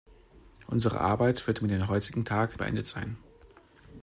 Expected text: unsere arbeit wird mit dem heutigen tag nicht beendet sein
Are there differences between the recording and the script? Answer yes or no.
yes